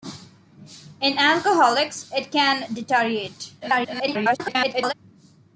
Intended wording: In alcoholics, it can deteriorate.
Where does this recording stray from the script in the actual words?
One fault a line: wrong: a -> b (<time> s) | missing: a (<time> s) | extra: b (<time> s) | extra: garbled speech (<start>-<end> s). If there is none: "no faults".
extra: garbled speech (3.6-4.9 s)